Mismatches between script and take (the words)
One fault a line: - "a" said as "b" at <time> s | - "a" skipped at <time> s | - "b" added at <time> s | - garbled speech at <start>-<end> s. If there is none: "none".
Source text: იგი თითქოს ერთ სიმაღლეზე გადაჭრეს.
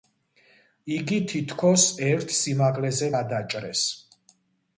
none